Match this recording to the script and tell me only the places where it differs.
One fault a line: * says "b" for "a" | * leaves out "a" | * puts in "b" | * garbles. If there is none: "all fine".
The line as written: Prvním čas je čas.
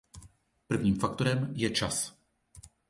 * says "faktorem" for "čas"